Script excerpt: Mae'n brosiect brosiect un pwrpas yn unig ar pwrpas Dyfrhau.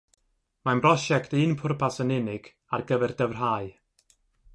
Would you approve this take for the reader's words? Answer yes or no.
no